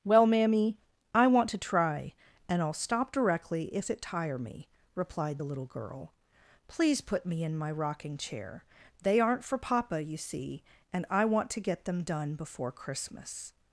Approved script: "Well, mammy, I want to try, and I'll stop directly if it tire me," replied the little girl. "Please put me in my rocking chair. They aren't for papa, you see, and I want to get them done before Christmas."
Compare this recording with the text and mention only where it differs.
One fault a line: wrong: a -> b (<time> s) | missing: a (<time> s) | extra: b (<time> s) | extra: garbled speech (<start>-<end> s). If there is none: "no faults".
no faults